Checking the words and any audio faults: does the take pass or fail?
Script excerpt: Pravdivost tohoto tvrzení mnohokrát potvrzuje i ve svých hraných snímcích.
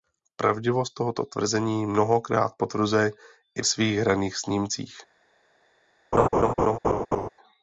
fail